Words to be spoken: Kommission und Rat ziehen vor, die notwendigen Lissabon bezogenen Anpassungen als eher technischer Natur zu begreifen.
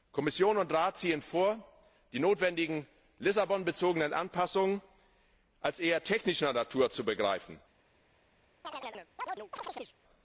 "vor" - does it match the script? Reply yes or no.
yes